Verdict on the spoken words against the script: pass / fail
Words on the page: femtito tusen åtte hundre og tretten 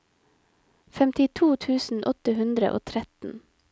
pass